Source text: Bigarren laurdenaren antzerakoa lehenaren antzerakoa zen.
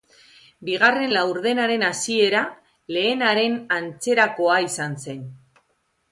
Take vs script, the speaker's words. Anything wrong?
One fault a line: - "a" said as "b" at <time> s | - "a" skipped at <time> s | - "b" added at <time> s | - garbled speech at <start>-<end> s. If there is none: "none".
- "antzerakoa" said as "hasiera" at 1.9 s
- "izan" added at 4.7 s